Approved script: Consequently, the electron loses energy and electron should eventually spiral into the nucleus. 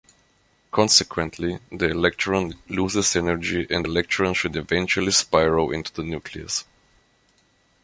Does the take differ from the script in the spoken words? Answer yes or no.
no